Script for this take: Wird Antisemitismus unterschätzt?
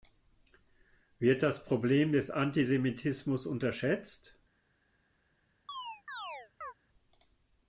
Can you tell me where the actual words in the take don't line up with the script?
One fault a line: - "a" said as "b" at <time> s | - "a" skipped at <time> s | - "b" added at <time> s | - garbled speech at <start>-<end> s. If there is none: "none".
- "das Problem des" added at 1.4 s